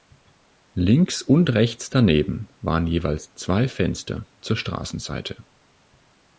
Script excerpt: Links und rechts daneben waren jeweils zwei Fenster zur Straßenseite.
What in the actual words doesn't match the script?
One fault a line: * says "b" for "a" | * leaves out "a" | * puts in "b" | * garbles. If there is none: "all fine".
all fine